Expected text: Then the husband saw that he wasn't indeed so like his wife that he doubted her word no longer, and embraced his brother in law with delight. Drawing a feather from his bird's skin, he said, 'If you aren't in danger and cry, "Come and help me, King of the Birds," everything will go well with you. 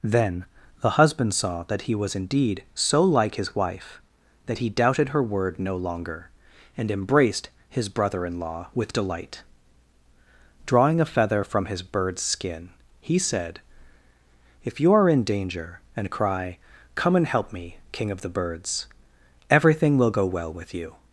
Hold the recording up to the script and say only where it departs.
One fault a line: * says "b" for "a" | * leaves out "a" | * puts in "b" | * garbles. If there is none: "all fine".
* says "was" for "wasn't"
* says "are" for "aren't"